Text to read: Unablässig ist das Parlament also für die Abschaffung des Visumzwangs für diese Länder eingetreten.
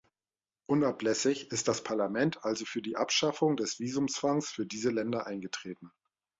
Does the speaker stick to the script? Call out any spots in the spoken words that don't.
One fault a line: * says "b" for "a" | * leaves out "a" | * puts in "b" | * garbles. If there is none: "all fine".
all fine